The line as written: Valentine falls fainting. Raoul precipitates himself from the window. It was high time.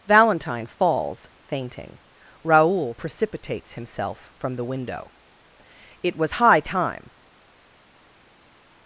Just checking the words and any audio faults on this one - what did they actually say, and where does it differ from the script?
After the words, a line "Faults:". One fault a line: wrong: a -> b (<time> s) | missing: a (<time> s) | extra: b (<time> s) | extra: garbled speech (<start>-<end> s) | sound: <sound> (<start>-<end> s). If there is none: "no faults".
Valentine falls fainting. Raoul precipitates himself from the window. It was high time.
Faults:
no faults